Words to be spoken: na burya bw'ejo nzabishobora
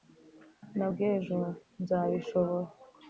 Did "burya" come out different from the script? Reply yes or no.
yes